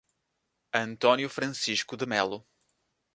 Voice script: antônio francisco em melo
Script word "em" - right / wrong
wrong